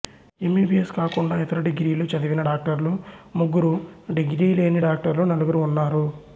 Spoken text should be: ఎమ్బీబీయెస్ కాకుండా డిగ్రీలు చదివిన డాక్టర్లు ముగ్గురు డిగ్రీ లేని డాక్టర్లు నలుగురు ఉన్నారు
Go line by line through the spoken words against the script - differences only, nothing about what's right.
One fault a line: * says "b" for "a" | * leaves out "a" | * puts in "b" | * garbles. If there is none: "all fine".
* puts in "ఇతర"